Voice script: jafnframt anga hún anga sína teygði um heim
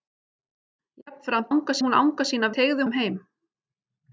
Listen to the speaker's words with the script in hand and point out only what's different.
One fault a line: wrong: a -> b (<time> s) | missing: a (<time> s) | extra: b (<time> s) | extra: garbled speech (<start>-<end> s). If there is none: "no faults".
no faults